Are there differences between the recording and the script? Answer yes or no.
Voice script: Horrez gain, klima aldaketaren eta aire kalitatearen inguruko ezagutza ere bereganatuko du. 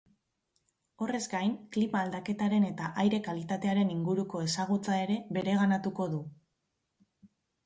no